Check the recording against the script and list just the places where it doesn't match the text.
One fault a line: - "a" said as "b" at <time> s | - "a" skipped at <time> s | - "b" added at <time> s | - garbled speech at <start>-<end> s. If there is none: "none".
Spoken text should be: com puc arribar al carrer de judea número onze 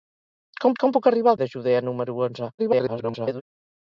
- "com" added at 0.8 s
- "carrer" skipped at 1.4 s
- garbled speech at 2.6-3.4 s